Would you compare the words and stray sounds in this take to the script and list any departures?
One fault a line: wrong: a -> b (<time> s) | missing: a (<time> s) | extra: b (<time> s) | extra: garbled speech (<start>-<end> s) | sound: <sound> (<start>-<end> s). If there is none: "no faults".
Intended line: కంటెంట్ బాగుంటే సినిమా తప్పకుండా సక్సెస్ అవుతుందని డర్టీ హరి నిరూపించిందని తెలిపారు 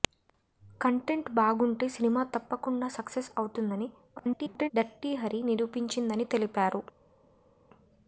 extra: garbled speech (4.2-4.7 s)